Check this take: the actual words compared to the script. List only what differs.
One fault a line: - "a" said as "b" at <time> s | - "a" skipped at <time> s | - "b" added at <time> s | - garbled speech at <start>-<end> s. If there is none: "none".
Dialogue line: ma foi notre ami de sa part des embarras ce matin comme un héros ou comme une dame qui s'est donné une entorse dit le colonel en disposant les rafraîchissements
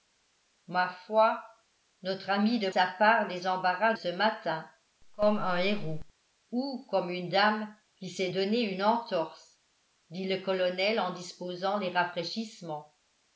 none